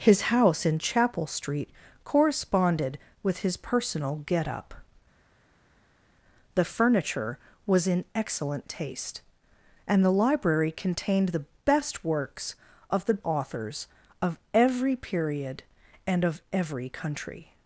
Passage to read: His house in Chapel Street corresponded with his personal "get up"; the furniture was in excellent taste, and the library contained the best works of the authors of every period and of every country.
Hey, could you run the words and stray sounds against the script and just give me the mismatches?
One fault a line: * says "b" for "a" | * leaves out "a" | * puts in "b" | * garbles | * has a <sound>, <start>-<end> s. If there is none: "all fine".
all fine